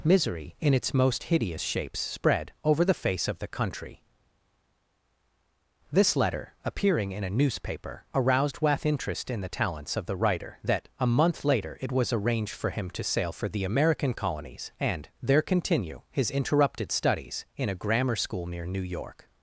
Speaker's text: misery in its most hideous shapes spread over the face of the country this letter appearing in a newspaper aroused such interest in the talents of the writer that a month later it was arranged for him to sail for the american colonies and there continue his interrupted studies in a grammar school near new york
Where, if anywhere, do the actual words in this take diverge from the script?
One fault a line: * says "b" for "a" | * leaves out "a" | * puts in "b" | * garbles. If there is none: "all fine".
* says "wath" for "such"